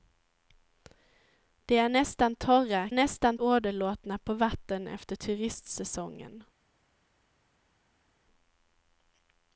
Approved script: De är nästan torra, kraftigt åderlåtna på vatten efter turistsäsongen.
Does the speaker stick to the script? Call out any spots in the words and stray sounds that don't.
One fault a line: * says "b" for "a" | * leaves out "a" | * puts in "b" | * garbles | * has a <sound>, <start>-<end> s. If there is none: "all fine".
* says "nästan" for "kraftigt"